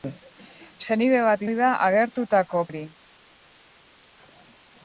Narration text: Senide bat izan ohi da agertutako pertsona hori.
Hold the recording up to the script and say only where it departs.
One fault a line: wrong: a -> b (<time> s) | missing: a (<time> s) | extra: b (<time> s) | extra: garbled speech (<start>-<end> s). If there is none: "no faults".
missing: izan (1.4 s)
missing: pertsona (2.6 s)